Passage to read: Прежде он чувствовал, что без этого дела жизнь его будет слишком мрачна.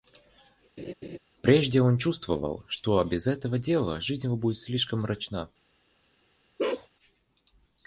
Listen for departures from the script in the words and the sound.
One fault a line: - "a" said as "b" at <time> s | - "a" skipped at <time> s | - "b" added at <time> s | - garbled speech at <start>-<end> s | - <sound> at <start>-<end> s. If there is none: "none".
- laugh at 0.8-1.2 s
- bark at 6.6-6.9 s